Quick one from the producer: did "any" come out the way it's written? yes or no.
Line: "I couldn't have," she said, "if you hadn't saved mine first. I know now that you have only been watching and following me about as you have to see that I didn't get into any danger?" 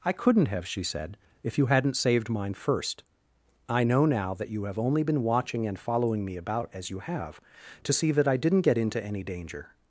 yes